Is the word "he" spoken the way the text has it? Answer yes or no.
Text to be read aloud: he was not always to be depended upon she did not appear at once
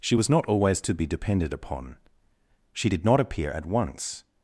no